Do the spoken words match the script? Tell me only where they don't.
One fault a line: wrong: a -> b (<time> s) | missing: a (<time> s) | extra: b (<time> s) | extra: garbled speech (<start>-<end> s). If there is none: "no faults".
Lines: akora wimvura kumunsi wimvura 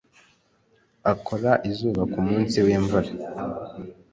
wrong: wimvura -> izuba (1.7 s)